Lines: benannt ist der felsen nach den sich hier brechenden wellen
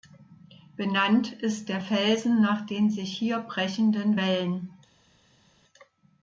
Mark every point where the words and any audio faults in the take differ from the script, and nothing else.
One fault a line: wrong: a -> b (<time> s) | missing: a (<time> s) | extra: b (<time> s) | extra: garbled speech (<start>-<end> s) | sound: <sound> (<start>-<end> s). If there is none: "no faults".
no faults